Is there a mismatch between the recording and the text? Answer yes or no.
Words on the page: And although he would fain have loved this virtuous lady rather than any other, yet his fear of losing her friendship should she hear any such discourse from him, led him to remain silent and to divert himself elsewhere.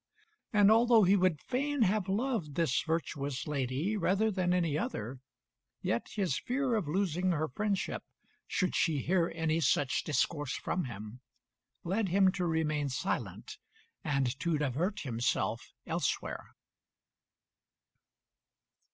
no